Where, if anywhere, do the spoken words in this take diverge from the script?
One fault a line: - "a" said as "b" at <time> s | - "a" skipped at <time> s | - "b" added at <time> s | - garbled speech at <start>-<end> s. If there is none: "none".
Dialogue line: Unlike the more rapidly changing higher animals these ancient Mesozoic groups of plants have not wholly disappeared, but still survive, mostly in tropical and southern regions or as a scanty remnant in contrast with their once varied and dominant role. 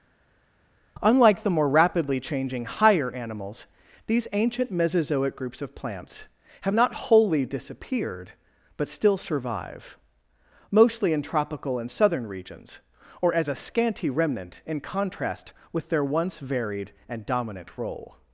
none